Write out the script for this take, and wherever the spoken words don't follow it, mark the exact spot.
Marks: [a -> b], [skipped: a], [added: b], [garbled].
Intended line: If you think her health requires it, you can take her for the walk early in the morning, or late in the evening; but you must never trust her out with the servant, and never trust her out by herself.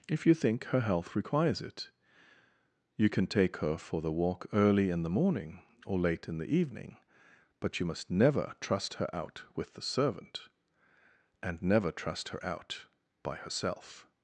If you think her health requires it, you can take her for the walk early in the morning, or late in the evening; but you must never trust her out with the servant, and never trust her out by herself.